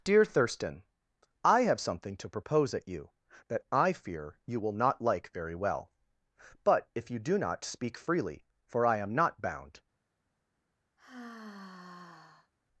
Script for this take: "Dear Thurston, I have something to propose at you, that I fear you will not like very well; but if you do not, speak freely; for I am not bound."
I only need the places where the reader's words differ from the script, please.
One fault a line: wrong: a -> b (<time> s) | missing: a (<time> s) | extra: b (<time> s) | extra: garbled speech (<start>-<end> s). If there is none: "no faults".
no faults